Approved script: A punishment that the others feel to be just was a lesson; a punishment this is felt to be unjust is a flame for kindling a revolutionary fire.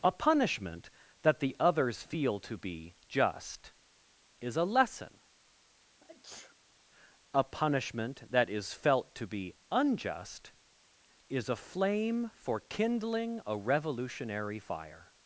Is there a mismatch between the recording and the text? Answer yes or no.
yes